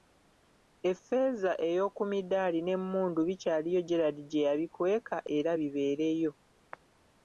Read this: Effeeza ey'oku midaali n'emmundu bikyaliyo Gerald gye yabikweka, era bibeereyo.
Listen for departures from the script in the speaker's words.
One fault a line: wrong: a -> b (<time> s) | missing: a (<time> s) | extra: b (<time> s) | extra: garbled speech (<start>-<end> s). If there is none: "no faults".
no faults